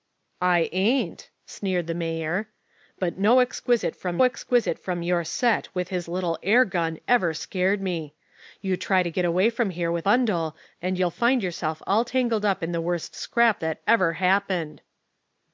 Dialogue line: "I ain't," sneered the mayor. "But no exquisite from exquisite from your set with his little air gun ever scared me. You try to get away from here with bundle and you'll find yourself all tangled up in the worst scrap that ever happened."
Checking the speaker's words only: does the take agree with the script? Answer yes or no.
yes